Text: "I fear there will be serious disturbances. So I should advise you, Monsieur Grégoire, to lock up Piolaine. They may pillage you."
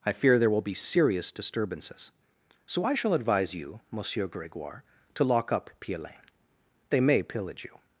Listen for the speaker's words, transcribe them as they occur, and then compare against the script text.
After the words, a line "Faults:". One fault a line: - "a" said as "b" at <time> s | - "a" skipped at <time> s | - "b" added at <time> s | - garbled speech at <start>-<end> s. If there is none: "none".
"I fear there will be serious disturbances. So I shall advise you, Monsieur Grégoire, to lock up Piolaine. They may pillage you."
Faults:
- "should" said as "shall" at 2.9 s